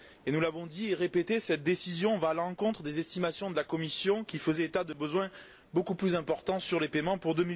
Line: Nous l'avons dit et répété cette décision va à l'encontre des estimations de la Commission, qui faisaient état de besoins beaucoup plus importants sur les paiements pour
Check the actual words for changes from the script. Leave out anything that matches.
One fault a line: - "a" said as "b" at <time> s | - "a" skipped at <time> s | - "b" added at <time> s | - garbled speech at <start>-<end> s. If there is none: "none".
none